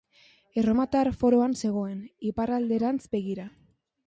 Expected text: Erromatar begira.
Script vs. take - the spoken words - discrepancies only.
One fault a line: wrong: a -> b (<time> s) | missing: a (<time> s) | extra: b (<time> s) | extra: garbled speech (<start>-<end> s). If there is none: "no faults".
extra: foroan zegoen iparralderantz (1.2 s)